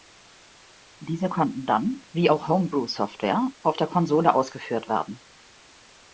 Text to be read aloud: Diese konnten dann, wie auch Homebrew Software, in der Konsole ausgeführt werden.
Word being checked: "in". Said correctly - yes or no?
no